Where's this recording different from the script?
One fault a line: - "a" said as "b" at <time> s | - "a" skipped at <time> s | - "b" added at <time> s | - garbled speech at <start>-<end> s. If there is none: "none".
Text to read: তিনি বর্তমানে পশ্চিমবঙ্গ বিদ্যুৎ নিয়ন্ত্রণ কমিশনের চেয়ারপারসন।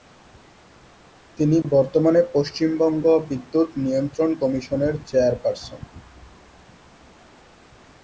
none